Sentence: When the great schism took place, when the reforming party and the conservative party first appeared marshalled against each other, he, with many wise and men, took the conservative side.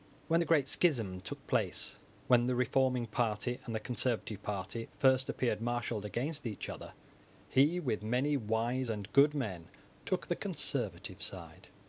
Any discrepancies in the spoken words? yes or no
yes